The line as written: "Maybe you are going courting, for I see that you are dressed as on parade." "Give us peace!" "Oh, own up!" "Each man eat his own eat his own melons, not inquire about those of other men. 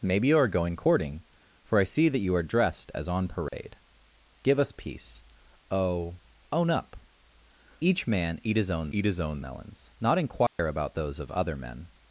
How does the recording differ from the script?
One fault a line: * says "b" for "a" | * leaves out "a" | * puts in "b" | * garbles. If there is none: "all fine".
all fine